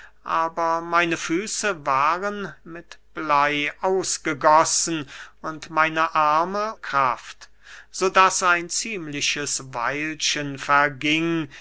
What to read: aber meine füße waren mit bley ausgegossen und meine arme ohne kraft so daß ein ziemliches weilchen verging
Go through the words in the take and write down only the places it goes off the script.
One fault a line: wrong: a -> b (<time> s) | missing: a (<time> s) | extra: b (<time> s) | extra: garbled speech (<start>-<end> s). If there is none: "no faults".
missing: ohne (6.7 s)